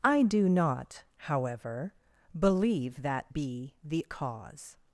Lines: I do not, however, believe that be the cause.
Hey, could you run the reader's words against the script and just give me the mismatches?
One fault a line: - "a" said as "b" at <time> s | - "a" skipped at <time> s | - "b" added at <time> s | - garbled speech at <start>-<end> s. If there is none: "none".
none